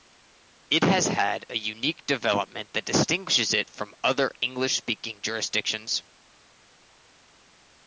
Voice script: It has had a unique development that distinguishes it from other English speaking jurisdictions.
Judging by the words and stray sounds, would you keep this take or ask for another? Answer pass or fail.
pass